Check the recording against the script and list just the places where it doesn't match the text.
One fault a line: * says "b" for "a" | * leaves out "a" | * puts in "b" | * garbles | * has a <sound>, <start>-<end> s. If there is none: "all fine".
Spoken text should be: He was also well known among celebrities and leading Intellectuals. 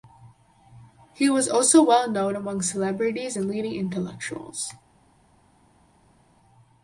all fine